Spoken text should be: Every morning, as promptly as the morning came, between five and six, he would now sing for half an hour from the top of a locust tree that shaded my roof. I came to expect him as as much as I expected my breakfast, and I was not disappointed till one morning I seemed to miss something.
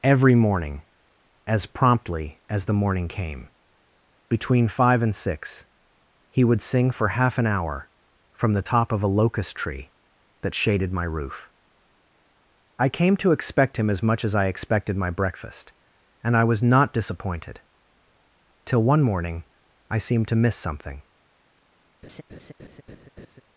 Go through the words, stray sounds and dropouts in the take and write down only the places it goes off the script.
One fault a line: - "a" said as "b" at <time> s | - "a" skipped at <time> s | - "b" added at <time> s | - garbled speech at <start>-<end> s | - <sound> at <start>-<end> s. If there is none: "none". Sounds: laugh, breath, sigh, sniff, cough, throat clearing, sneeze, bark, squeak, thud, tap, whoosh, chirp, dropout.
- "now" skipped at 6.6 s
- "as" skipped at 14.0 s
- laugh at 22.0-23.4 s